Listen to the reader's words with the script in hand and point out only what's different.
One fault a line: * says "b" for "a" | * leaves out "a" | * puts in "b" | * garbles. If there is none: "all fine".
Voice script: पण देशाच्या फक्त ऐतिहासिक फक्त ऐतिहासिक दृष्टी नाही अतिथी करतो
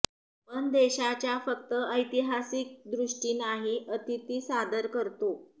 * leaves out "फक्त ऐतिहासिक"
* puts in "सादर"